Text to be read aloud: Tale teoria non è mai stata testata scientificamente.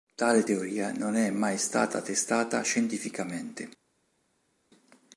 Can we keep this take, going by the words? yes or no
yes